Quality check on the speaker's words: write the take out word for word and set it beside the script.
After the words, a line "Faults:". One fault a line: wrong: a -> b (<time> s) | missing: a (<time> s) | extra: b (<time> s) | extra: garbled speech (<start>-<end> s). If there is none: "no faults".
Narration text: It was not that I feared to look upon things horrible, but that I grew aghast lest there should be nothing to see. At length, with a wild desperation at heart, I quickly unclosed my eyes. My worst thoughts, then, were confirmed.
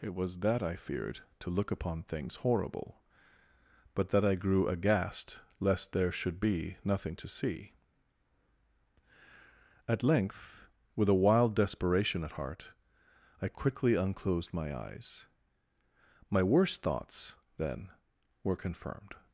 It was that I feared to look upon things horrible, but that I grew aghast lest there should be nothing to see. At length, with a wild desperation at heart, I quickly unclosed my eyes. My worst thoughts, then, were confirmed.
Faults:
missing: not (0.4 s)